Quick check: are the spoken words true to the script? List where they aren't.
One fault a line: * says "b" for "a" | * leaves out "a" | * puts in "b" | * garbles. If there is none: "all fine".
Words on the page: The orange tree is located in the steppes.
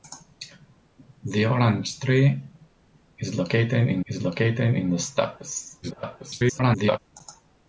* puts in "is located in"
* garbles